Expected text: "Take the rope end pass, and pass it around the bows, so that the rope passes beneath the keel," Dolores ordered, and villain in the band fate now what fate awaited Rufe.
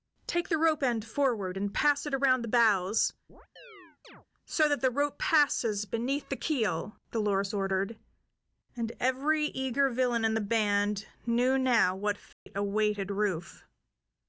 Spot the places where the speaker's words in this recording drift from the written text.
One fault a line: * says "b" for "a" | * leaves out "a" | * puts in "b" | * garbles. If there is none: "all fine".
* says "forward" for "pass"
* puts in "every eager"
* says "knew" for "fate"